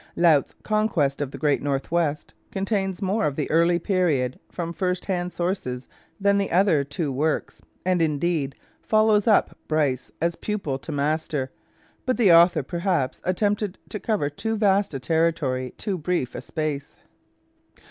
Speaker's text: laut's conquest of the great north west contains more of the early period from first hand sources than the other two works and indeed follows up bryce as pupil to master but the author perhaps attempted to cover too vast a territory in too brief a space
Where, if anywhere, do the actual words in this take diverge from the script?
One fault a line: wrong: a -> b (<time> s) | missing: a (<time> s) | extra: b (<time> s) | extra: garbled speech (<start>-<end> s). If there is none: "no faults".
missing: in (15.8 s)